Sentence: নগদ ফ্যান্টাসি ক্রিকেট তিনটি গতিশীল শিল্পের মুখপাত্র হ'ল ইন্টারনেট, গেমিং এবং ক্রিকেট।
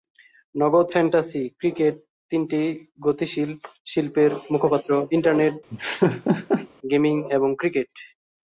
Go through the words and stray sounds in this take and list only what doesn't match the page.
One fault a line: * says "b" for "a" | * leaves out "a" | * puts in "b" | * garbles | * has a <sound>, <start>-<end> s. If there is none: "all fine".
* leaves out "হ'ল"
* has a laugh, 5.7-6.7 s